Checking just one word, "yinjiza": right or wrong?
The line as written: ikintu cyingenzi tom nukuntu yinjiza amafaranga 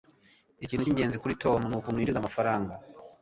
right